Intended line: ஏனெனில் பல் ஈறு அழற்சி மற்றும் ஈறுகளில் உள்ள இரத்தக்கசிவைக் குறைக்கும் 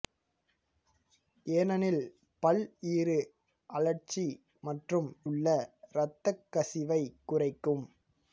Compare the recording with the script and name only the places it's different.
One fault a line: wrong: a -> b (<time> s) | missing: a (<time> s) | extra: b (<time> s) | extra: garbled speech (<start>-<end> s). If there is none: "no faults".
missing: ஈறுகளில் (5.1 s)